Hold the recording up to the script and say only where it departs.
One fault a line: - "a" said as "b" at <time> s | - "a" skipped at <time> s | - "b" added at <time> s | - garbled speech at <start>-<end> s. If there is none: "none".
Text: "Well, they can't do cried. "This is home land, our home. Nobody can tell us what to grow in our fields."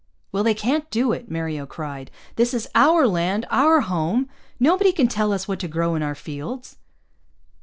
- "it Mario" added at 1.1 s
- "home" said as "our" at 2.7 s